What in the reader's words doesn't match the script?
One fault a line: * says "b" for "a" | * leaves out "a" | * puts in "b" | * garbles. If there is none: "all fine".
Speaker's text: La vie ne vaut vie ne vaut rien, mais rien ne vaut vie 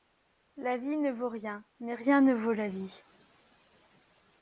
* leaves out "vie ne vaut"
* puts in "la"